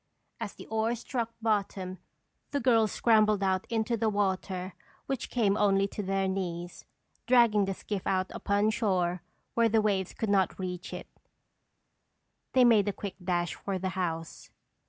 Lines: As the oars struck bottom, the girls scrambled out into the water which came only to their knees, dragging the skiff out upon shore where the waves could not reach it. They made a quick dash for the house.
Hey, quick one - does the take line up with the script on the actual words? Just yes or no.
yes